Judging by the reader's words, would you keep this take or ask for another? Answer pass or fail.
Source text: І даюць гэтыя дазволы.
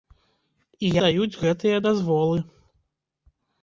pass